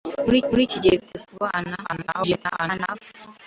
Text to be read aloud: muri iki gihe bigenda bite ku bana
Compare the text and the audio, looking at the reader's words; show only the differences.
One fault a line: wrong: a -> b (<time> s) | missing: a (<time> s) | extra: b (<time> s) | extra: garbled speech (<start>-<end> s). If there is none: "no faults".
extra: muri (0.5 s)
missing: bigenda (0.9 s)
extra: garbled speech (1.8-3.0 s)